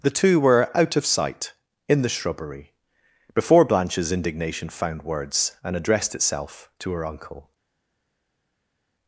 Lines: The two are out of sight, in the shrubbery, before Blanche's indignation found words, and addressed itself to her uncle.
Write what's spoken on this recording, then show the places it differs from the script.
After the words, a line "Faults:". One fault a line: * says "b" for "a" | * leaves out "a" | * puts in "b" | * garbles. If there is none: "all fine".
The two were out of sight, in the shrubbery, before Blanche's indignation found words, and addressed itself to her uncle.
Faults:
* says "were" for "are"